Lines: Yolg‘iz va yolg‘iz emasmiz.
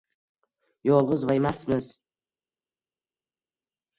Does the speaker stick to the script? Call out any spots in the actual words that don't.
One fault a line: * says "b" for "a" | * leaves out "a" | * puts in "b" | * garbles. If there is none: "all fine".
* leaves out "yolg‘iz"